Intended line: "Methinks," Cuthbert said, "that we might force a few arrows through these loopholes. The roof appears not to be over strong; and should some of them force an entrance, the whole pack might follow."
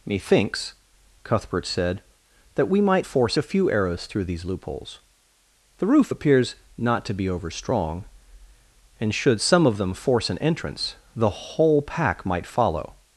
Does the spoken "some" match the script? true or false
true